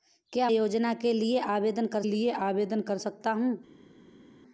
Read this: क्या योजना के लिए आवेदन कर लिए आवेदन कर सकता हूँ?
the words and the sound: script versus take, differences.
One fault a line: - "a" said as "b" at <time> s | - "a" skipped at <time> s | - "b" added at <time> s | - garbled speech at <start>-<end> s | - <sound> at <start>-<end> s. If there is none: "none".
none